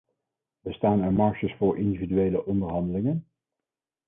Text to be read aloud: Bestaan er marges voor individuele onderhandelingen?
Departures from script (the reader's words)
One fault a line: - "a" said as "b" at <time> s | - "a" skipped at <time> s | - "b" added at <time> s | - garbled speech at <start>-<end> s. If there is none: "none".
none